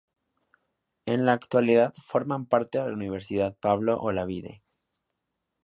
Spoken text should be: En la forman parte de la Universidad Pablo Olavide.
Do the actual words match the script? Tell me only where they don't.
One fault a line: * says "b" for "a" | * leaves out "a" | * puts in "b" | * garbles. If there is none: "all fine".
* puts in "actualidad"